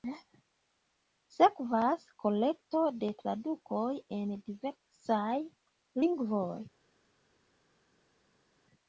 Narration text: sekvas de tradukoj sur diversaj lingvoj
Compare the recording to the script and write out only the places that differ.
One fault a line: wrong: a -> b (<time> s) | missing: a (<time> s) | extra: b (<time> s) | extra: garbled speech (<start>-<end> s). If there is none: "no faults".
extra: kolekto (2.2 s)
wrong: sur -> en (4.2 s)